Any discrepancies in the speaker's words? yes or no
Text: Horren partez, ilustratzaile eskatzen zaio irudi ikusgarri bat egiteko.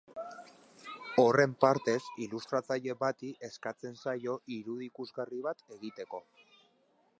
yes